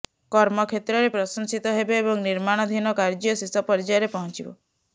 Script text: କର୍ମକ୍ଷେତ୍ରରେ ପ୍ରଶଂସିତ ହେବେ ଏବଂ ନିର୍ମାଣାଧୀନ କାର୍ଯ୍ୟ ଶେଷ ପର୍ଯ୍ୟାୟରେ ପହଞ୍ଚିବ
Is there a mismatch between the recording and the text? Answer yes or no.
no